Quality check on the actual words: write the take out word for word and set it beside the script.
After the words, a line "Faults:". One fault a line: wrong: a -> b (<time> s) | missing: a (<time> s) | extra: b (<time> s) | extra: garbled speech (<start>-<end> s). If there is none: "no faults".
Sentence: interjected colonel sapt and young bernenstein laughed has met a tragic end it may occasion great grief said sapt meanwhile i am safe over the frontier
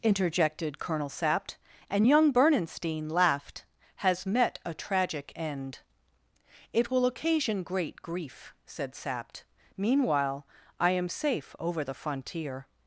interjected colonel sapt and young bernenstein laughed has met a tragic end it will occasion great grief said sapt meanwhile i am safe over the frontier
Faults:
wrong: may -> will (6.9 s)